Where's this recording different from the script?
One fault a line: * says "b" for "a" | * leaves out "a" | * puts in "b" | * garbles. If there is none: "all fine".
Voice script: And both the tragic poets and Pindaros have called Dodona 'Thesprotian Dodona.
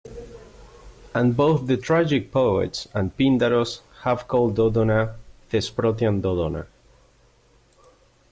all fine